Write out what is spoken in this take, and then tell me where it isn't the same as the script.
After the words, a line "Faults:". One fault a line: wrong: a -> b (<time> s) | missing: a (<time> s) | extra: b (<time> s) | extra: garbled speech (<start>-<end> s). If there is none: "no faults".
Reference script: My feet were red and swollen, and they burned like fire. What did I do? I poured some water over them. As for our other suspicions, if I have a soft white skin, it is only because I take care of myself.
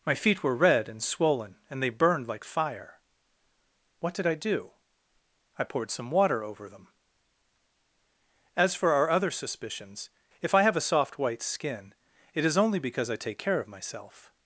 My feet were red and swollen, and they burned like fire. What did I do? I poured some water over them. As for our other suspicions, if I have a soft white skin, it is only because I take care of myself.
Faults:
no faults